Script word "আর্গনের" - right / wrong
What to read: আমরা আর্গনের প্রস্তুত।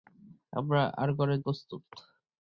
right